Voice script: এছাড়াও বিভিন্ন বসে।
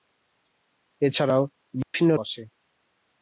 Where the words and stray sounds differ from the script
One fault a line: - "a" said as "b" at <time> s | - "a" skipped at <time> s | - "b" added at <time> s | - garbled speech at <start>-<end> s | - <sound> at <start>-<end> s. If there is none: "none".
- dropout at 1.8-1.9 s